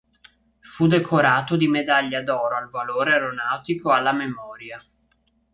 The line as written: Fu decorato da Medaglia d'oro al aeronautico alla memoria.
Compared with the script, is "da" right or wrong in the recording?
wrong